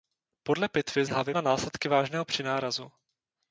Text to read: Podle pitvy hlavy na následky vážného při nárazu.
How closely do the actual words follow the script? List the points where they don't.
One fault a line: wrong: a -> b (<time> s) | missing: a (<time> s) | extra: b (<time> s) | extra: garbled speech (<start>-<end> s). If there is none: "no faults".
no faults